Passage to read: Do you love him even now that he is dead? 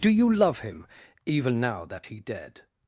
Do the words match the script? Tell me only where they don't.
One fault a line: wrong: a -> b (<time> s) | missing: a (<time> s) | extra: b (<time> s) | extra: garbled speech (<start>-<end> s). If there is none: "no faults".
missing: is (2.2 s)